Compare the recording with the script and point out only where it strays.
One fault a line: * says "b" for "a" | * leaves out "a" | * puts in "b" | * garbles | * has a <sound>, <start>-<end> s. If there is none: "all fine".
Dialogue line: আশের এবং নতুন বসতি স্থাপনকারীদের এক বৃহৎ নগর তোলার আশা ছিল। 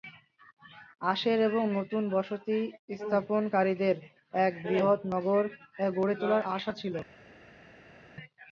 * puts in "গড়ে"